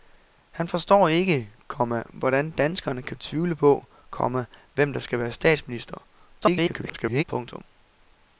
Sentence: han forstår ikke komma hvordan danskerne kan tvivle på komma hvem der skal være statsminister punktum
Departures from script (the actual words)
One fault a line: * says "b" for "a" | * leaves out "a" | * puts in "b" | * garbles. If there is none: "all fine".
* garbles